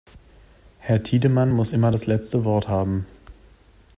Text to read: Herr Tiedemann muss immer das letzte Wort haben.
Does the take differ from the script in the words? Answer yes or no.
no